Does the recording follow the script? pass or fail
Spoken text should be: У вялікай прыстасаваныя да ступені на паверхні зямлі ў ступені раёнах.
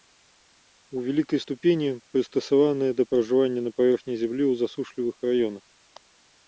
fail